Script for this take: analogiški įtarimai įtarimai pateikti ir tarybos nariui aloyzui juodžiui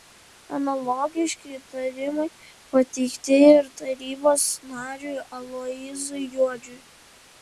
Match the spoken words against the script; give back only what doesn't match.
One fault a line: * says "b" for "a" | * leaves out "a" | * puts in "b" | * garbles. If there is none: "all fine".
* leaves out "įtarimai"